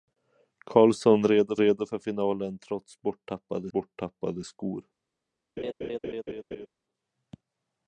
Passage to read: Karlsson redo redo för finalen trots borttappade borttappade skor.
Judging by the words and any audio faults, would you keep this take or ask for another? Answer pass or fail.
fail